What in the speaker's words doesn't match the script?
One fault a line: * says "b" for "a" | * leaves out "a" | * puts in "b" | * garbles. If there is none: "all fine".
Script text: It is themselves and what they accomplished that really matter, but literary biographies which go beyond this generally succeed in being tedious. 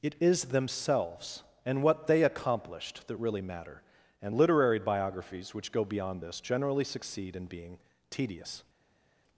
* says "and" for "but"